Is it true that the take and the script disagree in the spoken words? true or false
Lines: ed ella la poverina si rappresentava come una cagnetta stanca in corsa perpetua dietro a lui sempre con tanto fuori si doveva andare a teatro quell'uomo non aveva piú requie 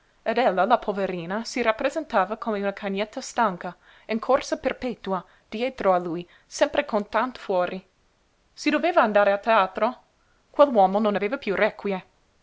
false